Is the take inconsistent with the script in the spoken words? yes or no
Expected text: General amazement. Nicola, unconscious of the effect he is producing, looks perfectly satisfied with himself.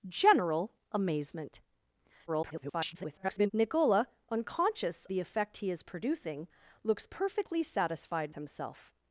yes